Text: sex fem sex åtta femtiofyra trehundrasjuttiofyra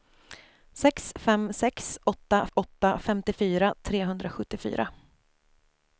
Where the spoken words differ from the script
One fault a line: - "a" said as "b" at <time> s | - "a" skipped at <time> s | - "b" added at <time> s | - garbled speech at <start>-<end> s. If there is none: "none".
- "åtta" added at 2.5 s